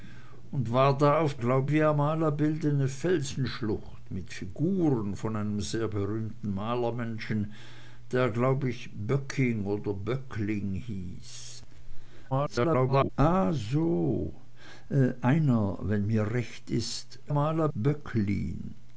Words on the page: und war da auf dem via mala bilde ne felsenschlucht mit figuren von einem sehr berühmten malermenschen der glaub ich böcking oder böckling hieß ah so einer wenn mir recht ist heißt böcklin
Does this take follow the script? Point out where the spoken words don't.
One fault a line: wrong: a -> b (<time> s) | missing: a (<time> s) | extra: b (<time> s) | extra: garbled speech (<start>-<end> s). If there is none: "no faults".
wrong: dem -> glaub (1.4 s)
extra: garbled speech (12.3-13.1 s)
wrong: heißt -> mala (17.3 s)